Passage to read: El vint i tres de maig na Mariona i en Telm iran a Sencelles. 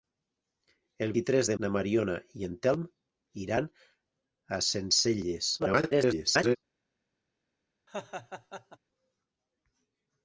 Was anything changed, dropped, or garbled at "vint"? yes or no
yes